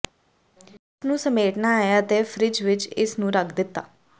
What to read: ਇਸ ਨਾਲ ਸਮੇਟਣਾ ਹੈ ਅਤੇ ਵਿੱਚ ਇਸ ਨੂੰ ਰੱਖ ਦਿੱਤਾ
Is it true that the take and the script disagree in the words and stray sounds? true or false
true